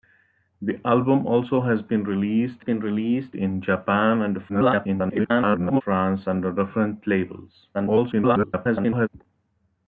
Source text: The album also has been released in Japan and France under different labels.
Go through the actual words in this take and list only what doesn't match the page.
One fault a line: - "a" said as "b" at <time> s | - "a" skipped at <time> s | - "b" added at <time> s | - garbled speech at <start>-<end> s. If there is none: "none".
- "been released" added at 2.6 s
- garbled speech at 4.5-5.8 s
- garbled speech at 7.7-9.1 s